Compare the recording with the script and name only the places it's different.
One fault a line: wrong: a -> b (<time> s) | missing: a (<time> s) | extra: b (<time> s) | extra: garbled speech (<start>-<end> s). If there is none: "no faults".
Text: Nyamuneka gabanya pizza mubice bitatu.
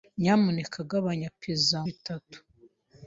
missing: mubice (1.8 s)